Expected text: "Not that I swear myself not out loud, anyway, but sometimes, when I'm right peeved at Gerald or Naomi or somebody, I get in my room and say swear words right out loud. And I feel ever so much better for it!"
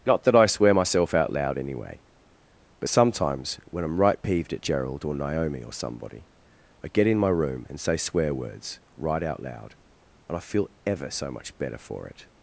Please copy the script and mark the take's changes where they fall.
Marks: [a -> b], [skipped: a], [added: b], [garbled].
"Not that I swear myself [skipped: not] out loud, anyway, but sometimes, when I'm right peeved at Gerald or Naomi or somebody, I get in my room and say swear words right out loud. And I feel ever so much better for it!"